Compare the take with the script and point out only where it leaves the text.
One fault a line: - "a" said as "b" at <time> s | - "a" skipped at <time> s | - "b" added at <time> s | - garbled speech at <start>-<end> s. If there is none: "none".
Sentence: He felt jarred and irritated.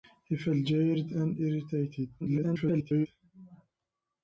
- garbled speech at 2.2-3.1 s